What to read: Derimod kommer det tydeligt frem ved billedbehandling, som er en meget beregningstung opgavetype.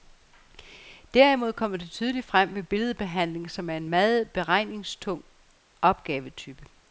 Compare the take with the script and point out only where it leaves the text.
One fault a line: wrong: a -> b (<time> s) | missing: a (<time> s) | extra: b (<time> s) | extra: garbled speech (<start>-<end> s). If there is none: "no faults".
no faults